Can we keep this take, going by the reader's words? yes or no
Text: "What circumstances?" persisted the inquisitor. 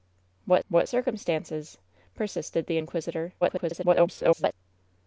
no